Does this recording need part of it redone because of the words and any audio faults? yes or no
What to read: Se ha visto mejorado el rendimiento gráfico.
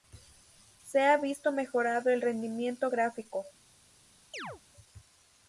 yes